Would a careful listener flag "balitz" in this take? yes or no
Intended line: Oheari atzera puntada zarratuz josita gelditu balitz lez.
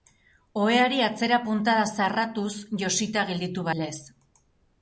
yes